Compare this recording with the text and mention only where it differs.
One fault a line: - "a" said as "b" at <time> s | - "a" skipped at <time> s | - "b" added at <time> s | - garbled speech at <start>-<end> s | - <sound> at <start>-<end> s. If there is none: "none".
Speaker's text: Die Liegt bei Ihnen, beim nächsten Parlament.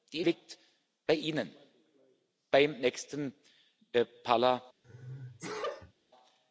- sneeze at 4.8-5.9 s